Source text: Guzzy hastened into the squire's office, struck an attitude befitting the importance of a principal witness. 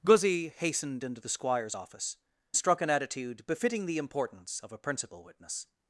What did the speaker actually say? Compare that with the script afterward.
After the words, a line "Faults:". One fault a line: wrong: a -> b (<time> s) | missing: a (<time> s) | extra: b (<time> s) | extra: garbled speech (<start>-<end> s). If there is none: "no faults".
Guzzy hastened into the squire's office, struck an attitude befitting the importance of a principal witness.
Faults:
no faults